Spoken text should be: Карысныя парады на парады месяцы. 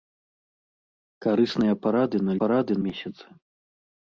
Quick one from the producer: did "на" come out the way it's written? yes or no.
yes